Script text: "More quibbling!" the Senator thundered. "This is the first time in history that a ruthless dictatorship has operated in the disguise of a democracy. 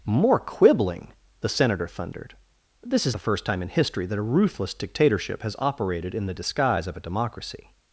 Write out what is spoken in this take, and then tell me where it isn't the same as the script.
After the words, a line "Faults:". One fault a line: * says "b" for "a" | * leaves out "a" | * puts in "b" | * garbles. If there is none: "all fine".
"More quibbling!" the Senator thundered. "This is the first time in history that a ruthless dictatorship has operated in the disguise of a democracy.
Faults:
all fine